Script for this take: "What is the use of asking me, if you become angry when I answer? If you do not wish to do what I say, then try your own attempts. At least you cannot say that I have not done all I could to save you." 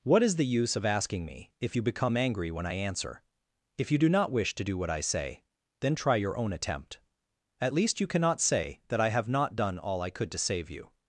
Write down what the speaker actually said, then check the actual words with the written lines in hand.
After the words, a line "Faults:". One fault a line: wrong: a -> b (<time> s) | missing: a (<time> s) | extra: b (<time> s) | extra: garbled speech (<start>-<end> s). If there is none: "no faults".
"What is the use of asking me, if you become angry when I answer? If you do not wish to do what I say, then try your own attempt. At least you cannot say that I have not done all I could to save you."
Faults:
wrong: attempts -> attempt (6.5 s)